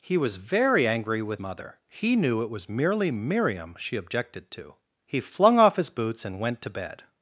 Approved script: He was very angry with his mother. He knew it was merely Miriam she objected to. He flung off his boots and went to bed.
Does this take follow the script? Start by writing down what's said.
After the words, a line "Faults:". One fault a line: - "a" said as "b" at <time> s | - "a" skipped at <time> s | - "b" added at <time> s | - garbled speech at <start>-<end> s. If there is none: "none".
He was very angry with mother. He knew it was merely Miriam she objected to. He flung off his boots and went to bed.
Faults:
- "his" skipped at 1.4 s